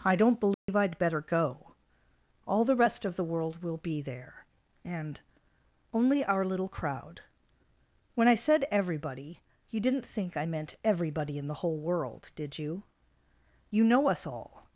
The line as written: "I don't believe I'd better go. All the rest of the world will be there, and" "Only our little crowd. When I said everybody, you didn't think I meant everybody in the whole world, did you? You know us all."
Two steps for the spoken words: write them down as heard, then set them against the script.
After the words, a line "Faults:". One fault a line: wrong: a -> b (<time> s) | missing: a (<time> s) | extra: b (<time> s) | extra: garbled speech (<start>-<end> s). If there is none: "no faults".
"I don't believe I'd better go. All the rest of the world will be there, and" "Only our little crowd. When I said everybody, you didn't think I meant everybody in the whole world, did you? You know us all."
Faults:
no faults